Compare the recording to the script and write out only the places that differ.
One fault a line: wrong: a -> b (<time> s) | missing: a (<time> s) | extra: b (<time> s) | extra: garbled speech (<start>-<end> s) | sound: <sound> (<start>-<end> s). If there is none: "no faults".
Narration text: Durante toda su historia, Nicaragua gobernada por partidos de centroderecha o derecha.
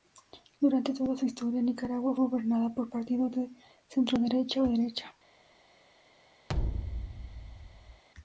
sound: thud (6.5-8.0 s)